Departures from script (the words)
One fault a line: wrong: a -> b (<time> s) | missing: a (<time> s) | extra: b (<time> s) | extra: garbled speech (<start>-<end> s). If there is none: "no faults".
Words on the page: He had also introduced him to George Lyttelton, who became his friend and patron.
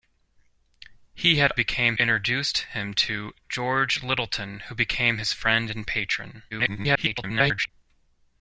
wrong: also -> became (1.5 s)
extra: garbled speech (6.5-7.7 s)